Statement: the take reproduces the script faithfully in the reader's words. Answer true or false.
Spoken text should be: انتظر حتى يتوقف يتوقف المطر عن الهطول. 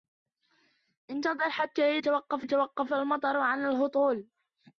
true